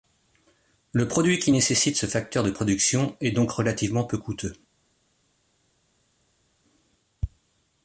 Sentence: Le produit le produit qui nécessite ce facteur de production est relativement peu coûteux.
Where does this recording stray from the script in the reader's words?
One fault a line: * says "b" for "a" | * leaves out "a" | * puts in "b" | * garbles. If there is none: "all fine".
* leaves out "le produit"
* puts in "donc"